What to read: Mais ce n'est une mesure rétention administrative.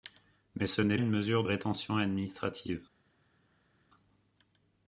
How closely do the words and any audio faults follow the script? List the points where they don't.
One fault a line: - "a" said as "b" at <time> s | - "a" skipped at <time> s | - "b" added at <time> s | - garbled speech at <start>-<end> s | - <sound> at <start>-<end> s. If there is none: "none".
none